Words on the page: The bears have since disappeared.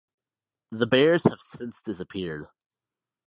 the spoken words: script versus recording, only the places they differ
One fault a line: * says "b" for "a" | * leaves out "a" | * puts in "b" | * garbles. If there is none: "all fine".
all fine